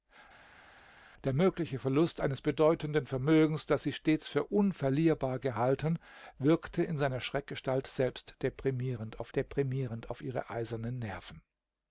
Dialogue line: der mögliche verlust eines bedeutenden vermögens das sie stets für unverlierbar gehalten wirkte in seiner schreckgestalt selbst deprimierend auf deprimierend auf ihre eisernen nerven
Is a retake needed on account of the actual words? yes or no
no